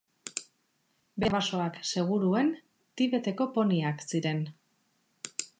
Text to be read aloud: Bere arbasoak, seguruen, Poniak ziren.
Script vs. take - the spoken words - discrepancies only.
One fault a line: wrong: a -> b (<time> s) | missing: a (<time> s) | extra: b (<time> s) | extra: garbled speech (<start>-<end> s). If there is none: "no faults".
extra: Tibeteko (3.0 s)